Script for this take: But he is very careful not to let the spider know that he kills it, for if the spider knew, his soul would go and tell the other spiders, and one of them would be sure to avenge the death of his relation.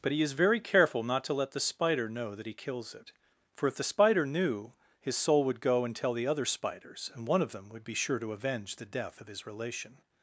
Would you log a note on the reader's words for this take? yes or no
no